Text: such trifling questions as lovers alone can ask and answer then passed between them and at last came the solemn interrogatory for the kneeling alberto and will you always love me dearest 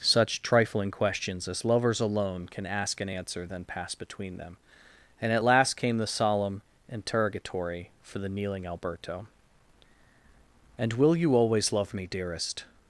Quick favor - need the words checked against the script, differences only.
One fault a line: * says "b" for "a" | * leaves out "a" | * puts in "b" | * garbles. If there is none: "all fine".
all fine